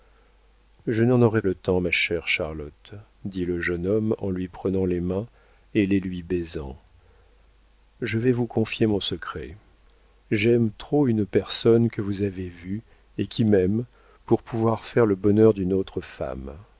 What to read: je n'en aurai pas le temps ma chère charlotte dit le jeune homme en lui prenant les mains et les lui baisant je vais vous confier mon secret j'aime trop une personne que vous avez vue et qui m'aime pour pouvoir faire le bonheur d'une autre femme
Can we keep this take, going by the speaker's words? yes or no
no